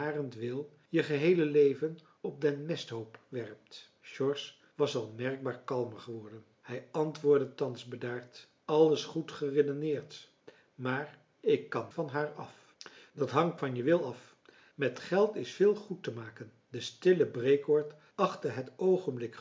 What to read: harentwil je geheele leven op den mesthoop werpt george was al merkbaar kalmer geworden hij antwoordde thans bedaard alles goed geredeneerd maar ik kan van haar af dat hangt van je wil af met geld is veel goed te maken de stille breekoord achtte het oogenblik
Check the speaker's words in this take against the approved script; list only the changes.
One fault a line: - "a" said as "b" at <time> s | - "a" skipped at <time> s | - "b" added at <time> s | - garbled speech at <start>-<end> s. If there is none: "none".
none